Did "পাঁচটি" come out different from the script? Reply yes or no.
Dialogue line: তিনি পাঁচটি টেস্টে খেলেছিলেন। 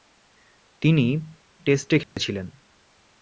yes